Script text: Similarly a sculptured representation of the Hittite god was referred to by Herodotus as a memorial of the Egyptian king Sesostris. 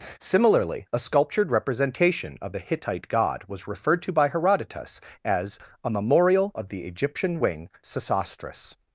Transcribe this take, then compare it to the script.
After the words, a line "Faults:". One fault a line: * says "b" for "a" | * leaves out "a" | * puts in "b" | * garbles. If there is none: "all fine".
Similarly a sculptured representation of the Hittite god was referred to by Herodotus as a memorial of the Egyptian wing Sesostris.
Faults:
* says "wing" for "king"